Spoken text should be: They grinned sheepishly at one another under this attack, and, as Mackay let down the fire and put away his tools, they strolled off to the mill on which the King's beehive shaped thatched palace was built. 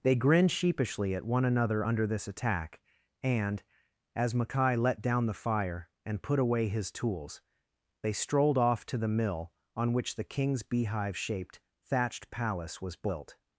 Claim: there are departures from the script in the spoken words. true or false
false